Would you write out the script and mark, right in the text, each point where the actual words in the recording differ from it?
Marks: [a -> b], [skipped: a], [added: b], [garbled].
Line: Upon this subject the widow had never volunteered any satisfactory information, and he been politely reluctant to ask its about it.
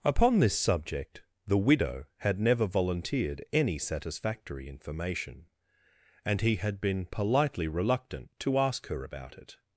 Upon this subject the widow had never volunteered any satisfactory information, and he [added: had] been politely reluctant to ask [its -> her] about it.